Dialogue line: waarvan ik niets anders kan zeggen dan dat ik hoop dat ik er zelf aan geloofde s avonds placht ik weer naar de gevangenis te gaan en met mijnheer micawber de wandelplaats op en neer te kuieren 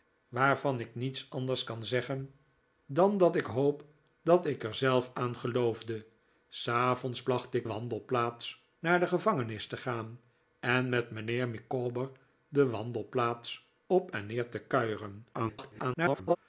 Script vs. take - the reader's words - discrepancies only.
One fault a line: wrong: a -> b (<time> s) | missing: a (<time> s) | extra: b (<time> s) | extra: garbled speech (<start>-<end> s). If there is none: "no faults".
wrong: weer -> wandelplaats (7.6 s)
extra: garbled speech (15.3-16.4 s)